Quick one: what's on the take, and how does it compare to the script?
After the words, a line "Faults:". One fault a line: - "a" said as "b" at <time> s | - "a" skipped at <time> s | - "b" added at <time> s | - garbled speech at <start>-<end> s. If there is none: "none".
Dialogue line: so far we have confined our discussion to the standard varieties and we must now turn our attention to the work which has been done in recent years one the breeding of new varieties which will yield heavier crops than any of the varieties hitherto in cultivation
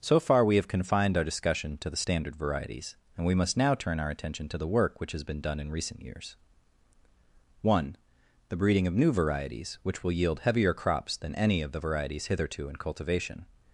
so far we have confined our discussion to the standard varieties and we must now turn our attention to the work which has been done in recent years one the breeding of new varieties which will yield heavier crops than any of the varieties hitherto in cultivation
Faults:
none